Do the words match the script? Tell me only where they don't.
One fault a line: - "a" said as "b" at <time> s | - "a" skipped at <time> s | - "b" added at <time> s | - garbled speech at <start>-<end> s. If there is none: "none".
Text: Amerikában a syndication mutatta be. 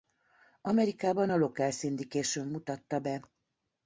- "local" added at 1.4 s